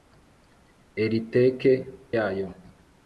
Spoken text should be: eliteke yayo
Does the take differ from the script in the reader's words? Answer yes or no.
no